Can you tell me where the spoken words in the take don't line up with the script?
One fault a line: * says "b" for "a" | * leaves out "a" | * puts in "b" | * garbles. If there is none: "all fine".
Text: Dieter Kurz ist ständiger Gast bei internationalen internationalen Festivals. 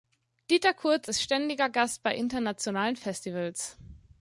* leaves out "internationalen"